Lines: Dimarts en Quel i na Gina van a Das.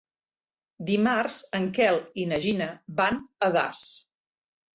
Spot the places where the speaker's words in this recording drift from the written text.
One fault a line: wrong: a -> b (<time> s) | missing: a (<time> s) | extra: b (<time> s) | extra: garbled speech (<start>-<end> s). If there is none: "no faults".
no faults